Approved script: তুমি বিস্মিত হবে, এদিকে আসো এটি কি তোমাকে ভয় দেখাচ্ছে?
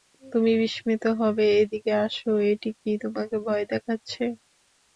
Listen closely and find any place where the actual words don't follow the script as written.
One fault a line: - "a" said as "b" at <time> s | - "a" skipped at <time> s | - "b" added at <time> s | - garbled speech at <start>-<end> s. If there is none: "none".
none